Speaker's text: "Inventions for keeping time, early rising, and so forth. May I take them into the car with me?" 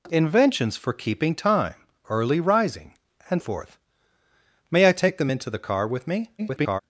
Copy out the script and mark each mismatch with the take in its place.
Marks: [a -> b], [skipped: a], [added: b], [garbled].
"Inventions for keeping time, early rising, and [skipped: so] forth. May I take them into the car with me?" [garbled]